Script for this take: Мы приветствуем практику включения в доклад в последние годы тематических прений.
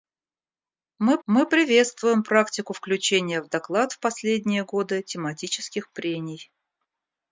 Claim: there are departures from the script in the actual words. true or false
true